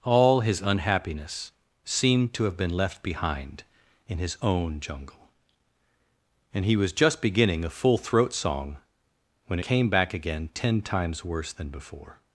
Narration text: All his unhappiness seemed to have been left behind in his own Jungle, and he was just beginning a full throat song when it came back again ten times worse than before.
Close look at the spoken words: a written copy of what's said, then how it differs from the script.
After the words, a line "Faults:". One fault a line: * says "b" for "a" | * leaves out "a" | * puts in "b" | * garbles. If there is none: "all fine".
All his unhappiness seemed to have been left behind in his own Jungle, and he was just beginning a full throat song when came back again ten times worse than before.
Faults:
* leaves out "it"